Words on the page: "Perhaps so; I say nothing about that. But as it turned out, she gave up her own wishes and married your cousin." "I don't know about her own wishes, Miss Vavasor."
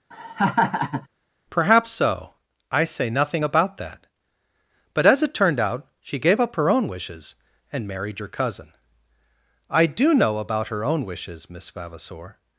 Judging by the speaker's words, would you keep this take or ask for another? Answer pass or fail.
fail